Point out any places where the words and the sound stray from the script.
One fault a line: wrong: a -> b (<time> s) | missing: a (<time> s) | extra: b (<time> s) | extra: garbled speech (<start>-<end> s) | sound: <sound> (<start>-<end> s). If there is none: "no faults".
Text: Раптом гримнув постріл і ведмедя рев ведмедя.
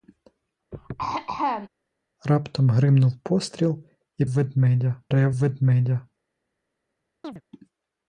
sound: throat clearing (0.7-1.7 s)
sound: chirp (7.2-7.4 s)